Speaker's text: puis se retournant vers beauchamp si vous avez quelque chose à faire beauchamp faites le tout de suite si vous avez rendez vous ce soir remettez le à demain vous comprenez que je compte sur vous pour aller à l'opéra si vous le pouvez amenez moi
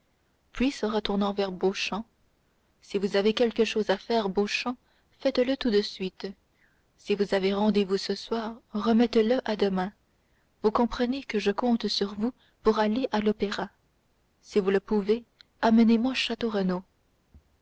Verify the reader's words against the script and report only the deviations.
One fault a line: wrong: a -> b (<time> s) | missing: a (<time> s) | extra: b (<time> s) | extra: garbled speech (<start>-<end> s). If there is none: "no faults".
no faults